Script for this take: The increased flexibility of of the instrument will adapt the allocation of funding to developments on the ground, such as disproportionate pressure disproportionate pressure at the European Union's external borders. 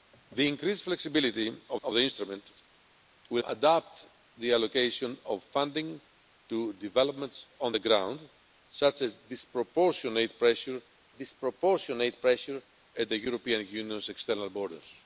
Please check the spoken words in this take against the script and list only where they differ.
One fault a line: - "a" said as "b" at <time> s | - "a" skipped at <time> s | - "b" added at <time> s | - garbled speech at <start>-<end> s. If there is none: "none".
none